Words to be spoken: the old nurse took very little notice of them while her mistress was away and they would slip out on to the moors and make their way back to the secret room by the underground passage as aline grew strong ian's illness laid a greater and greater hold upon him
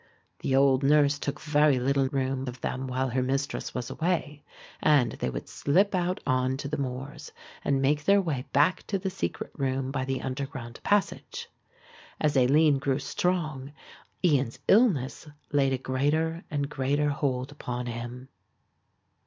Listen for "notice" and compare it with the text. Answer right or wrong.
wrong